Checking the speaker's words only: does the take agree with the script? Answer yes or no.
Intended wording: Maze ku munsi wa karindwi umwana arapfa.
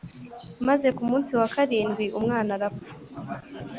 yes